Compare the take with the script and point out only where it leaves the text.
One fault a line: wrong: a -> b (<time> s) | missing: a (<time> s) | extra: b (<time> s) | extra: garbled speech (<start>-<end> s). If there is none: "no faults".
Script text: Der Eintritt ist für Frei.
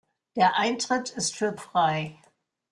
no faults